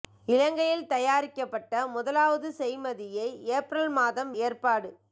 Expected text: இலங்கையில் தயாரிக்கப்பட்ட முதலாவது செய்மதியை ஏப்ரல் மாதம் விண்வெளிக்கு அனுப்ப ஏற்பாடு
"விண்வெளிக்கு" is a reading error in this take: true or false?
true